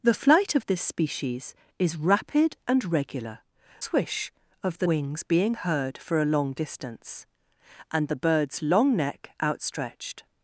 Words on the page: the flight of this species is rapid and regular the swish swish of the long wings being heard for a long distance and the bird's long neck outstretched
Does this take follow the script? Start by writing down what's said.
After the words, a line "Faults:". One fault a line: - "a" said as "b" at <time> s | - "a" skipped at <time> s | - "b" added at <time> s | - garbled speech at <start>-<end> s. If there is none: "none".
the flight of this species is rapid and regular swish of the wings being heard for a long distance and the bird's long neck outstretched
Faults:
- "the" skipped at 3.4 s
- "swish" skipped at 4.3 s
- "long" skipped at 4.9 s